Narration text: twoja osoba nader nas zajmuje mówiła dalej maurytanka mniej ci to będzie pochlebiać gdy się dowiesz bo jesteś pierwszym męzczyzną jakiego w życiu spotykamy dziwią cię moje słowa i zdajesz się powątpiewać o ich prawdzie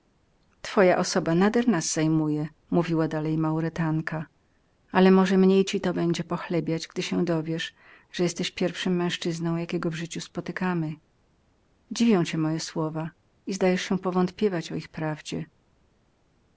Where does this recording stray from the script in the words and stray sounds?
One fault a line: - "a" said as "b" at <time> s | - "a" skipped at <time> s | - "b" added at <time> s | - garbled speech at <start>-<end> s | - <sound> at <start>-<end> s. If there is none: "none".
- "ale może" added at 4.9 s
- "bo" said as "że" at 8.1 s